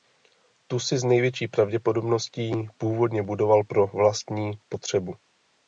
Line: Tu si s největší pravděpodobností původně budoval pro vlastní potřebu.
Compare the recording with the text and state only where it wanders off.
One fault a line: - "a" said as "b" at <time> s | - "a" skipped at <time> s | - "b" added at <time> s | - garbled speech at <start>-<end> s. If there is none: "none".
none